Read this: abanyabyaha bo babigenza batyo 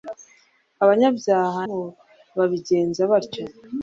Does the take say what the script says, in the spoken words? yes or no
yes